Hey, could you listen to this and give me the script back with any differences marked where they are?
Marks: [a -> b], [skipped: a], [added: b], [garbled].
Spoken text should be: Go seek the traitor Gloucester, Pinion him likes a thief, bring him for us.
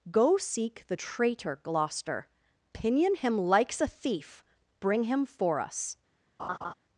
Go seek the traitor Gloucester, Pinion him likes a thief, bring him for us.